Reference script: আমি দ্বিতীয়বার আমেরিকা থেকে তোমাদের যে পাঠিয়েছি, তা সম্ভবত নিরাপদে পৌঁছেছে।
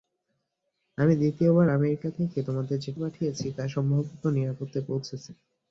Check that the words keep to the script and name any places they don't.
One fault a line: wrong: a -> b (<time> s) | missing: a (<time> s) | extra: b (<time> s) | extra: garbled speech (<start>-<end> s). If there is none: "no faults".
no faults